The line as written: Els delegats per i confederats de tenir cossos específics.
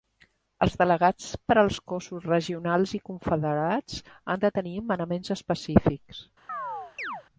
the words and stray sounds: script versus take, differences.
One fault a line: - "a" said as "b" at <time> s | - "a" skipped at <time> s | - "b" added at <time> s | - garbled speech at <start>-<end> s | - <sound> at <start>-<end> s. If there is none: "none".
- "als cossos regionals" added at 1.6 s
- "han" added at 4.3 s
- "cossos" said as "manaments" at 4.9 s
- chirp at 6.5-7.2 s